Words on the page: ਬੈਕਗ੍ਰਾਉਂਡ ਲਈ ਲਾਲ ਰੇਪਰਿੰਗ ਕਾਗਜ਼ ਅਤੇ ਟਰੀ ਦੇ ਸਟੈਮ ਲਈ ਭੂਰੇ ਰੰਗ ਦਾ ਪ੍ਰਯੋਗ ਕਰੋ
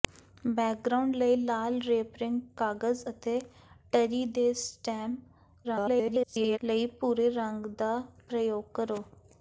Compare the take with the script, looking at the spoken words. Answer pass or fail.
fail